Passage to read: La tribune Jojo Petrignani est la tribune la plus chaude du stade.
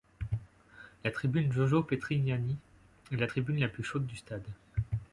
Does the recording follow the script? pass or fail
pass